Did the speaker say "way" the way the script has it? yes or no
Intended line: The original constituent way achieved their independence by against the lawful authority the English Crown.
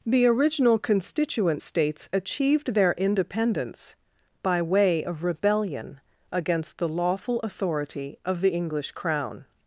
no